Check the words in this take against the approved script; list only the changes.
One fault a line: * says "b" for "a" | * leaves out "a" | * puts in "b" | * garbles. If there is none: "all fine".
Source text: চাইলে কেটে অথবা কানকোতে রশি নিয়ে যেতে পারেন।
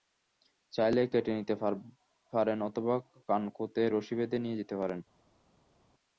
* puts in "নিতে পারেন"
* puts in "বেঁধে"